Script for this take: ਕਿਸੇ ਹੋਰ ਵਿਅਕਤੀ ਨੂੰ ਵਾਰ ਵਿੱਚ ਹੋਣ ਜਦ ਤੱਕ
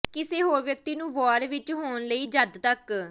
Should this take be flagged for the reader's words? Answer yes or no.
yes